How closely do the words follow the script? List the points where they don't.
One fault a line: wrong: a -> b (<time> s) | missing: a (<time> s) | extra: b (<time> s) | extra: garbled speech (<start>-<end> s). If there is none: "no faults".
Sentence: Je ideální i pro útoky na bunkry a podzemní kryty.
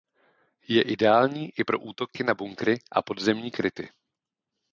no faults